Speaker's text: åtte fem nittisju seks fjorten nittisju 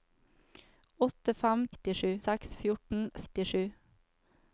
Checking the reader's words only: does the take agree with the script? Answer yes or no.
yes